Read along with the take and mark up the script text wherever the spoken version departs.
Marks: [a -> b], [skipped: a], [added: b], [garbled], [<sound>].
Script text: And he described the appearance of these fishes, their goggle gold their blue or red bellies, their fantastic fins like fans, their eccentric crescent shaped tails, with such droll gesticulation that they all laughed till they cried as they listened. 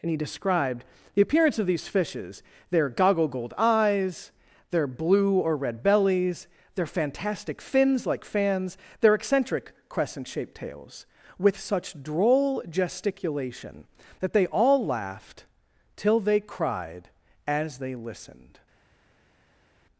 And he described the appearance of these fishes, their goggle gold [added: eyes] their blue or red bellies, their fantastic fins like fans, their eccentric crescent shaped tails, with such droll gesticulation that they all laughed till they cried as they listened.